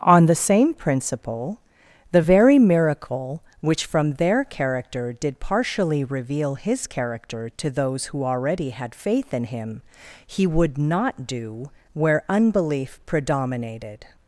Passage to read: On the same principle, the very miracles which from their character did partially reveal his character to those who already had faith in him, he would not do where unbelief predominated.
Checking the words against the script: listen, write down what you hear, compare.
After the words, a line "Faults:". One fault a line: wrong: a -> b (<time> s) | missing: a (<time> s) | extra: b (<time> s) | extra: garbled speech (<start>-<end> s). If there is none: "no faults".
On the same principle, the very miracle which from their character did partially reveal his character to those who already had faith in him, he would not do where unbelief predominated.
Faults:
wrong: miracles -> miracle (2.6 s)